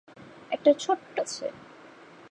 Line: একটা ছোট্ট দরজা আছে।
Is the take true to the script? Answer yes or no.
no